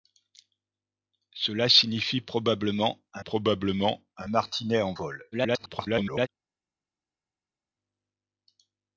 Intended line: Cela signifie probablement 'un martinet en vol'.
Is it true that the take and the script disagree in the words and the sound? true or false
true